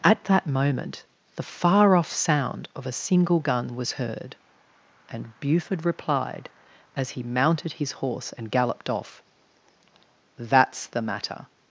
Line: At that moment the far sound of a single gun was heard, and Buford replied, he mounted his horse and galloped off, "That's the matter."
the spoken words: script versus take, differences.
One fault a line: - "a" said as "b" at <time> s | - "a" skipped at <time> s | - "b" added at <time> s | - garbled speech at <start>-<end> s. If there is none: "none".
- "off" added at 1.9 s
- "as" added at 7.0 s